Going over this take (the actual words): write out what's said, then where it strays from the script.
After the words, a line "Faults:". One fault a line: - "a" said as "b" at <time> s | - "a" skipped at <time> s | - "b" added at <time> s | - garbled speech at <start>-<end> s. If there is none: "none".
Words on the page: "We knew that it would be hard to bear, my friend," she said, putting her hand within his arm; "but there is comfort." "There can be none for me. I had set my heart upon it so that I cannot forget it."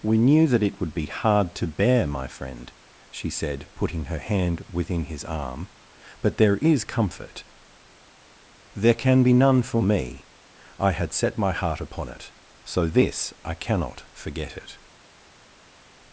"We knew that it would be hard to bear, my friend," she said, putting her hand within his arm; "but there is comfort." "There can be none for me. I had set my heart upon it so this I cannot forget it."
Faults:
- "that" said as "this" at 12.9 s